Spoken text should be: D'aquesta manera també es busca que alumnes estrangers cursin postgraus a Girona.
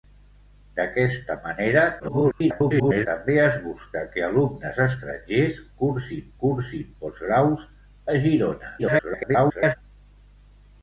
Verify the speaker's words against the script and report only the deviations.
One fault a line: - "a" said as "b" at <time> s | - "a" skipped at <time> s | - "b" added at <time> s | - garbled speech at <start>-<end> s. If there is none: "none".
- garbled speech at 2.0-3.1 s
- "cursin" added at 6.5 s
- garbled speech at 8.8-9.8 s